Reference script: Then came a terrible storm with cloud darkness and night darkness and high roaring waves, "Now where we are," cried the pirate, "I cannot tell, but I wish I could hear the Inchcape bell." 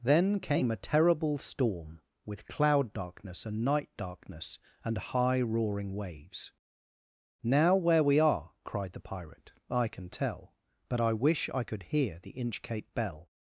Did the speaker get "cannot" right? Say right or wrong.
wrong